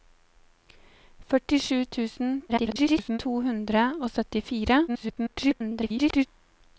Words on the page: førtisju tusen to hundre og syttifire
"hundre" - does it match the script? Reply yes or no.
yes